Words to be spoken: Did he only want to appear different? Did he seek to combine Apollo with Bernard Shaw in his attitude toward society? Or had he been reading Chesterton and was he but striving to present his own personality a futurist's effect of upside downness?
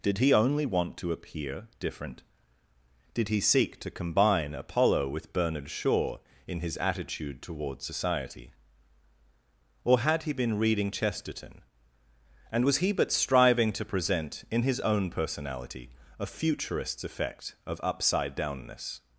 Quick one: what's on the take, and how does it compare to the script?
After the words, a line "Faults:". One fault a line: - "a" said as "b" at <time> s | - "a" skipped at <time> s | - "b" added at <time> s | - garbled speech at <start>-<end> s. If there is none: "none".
Did he only want to appear different? Did he seek to combine Apollo with Bernard Shaw in his attitude toward society? Or had he been reading Chesterton and was he but striving to present in his own personality a futurist's effect of upside downness?
Faults:
- "in" added at 14.5 s